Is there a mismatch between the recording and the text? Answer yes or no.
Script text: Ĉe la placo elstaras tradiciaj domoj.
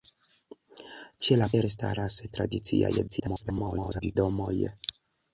yes